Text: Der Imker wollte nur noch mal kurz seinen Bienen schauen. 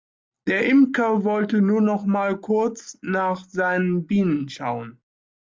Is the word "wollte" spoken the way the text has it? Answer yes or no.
yes